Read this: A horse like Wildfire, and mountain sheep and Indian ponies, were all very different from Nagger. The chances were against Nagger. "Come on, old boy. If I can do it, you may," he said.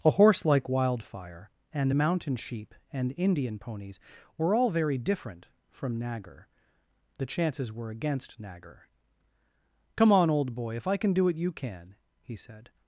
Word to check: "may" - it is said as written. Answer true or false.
false